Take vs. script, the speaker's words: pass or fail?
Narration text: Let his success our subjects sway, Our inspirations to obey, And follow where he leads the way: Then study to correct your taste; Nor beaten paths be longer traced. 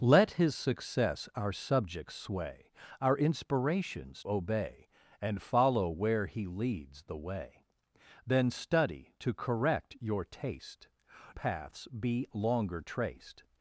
fail